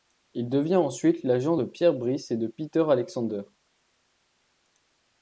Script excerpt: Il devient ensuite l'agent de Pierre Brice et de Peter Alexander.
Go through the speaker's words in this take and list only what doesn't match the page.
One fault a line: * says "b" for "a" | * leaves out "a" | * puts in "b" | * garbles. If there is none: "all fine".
all fine